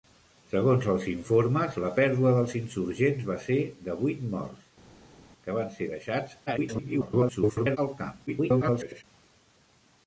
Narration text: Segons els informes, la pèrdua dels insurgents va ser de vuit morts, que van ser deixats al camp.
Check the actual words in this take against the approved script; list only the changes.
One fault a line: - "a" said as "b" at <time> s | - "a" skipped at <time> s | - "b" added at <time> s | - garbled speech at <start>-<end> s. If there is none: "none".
- garbled speech at 6.5-7.8 s
- garbled speech at 8.3-9.0 s